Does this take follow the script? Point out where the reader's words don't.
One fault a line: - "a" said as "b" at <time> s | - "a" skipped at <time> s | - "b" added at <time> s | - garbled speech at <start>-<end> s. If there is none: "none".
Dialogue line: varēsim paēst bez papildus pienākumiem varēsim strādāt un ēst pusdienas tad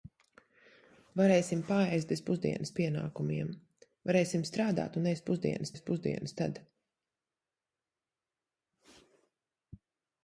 - "papildus" said as "pusdienas" at 2.3 s
- "ēst pusdienas" added at 5.7 s